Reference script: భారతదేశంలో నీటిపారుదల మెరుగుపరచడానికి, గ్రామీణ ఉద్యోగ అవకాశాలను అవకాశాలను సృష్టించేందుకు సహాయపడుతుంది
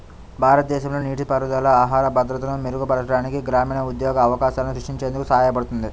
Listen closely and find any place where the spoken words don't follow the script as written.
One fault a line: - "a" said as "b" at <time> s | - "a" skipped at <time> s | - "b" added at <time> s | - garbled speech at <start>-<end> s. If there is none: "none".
- "ఆహార భద్రతను" added at 1.8 s
- "అవకాశాలను" skipped at 4.8 s